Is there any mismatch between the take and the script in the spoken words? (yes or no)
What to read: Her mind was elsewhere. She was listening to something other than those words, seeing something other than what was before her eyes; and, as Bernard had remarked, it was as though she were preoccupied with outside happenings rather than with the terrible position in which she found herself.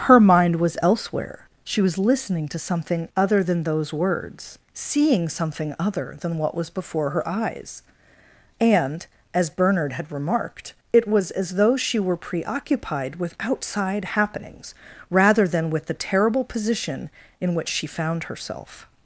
no